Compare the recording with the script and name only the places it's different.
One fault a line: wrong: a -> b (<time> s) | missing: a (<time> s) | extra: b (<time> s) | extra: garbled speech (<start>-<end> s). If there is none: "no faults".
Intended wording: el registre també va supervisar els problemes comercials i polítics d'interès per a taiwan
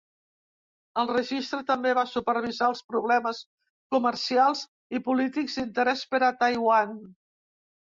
no faults